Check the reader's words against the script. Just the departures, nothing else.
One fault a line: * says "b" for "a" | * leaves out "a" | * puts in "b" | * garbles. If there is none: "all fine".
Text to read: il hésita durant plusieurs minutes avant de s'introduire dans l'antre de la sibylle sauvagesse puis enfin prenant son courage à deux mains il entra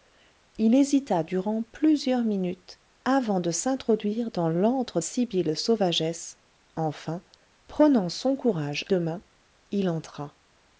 * leaves out "de la"
* leaves out "puis"
* leaves out "à"